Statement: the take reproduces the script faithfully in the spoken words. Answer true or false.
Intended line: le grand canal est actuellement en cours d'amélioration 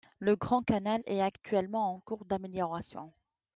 true